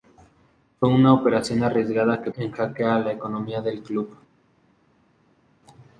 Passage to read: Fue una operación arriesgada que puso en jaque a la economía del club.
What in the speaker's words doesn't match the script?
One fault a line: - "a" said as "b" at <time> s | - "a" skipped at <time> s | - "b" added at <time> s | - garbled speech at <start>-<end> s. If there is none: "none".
- "puso" skipped at 2.3 s